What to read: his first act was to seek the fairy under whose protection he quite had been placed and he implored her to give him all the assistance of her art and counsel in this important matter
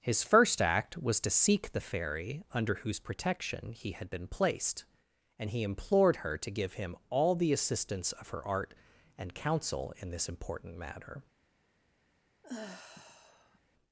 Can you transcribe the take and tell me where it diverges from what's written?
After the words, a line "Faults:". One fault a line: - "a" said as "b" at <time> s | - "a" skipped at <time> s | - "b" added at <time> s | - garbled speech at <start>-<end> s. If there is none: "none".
his first act was to seek the fairy under whose protection he had been placed and he implored her to give him all the assistance of her art and counsel in this important matter
Faults:
- "quite" skipped at 3.9 s